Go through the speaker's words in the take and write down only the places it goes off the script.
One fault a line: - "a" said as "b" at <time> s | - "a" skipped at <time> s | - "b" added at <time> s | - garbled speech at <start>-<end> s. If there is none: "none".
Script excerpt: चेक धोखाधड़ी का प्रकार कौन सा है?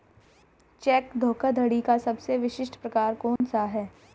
- "सबसे विशिष्ट" added at 2.0 s